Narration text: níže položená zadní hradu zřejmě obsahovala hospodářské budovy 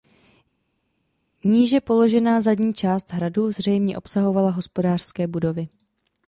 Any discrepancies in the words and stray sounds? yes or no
yes